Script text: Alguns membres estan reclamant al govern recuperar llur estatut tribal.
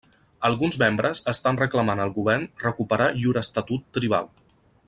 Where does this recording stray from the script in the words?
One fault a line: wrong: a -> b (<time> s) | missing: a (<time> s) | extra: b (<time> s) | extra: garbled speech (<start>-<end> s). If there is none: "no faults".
no faults